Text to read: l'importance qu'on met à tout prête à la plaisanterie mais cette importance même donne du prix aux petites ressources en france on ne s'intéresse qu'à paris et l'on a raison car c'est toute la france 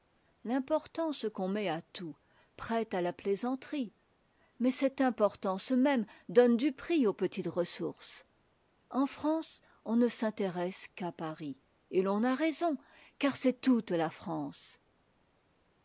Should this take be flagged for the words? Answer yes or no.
no